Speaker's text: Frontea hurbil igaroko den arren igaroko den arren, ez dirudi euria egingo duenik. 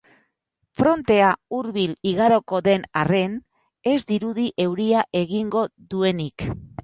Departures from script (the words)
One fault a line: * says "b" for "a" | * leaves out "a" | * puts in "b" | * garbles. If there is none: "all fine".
* leaves out "igaroko den arren"